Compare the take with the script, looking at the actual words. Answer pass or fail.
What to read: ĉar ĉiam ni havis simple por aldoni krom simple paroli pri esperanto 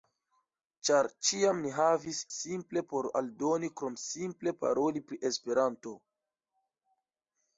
pass